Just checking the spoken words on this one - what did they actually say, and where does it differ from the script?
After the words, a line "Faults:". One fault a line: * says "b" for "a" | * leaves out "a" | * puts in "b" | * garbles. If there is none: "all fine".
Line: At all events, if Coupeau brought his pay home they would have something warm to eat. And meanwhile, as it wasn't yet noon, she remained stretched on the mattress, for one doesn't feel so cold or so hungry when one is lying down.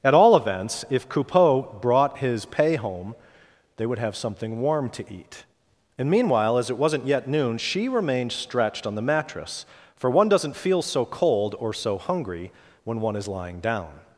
At all events, if Coupeau brought his pay home they would have something warm to eat. And meanwhile, as it wasn't yet noon, she remained stretched on the mattress, for one doesn't feel so cold or so hungry when one is lying down.
Faults:
all fine